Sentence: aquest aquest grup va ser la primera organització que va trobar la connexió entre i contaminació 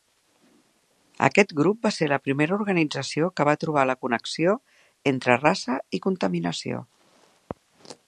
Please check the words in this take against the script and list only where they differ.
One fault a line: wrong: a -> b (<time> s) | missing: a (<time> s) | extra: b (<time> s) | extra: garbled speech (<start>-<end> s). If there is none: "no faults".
missing: aquest (1.5 s)
extra: raça (5.4 s)